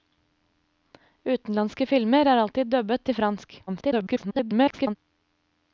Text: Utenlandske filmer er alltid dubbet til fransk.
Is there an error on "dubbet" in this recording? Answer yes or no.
no